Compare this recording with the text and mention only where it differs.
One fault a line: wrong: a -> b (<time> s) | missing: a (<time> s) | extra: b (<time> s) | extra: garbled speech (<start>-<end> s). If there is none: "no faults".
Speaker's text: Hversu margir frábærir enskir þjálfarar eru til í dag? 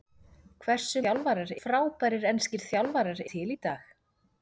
wrong: margir -> þjálfarar (1.0 s)
missing: eru (3.2 s)